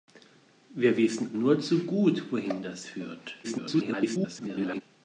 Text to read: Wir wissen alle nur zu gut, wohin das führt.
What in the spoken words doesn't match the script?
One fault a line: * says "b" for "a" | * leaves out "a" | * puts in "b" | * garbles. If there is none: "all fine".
* leaves out "alle"
* garbles